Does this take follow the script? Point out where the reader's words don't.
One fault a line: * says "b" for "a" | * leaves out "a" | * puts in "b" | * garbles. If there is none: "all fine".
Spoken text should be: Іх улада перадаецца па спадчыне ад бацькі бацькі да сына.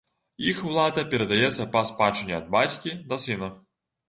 * leaves out "бацькі"